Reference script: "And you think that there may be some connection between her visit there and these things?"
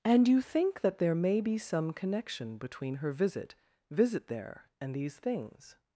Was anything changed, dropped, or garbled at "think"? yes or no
no